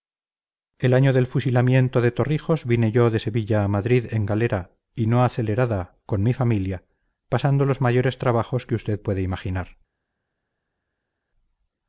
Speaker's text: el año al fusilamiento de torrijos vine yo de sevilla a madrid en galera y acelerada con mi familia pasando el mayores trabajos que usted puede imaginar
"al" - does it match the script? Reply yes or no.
no